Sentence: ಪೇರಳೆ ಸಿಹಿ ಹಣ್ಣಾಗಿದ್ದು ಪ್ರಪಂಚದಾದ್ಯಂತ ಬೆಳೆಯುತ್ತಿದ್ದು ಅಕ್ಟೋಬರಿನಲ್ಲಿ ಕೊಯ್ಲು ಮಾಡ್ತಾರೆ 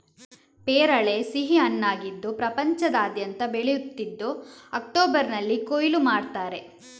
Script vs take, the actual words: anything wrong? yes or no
no